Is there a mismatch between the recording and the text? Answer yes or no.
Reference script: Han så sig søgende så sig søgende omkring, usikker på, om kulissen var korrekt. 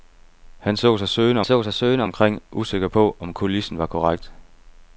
no